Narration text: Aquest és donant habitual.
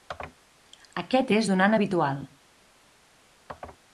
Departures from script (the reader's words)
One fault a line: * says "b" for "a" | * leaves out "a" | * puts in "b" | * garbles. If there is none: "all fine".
all fine